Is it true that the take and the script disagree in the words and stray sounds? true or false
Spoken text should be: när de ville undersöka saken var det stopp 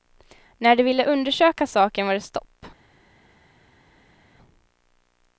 false